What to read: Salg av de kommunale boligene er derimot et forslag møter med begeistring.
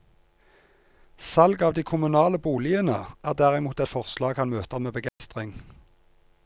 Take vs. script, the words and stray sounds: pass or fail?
fail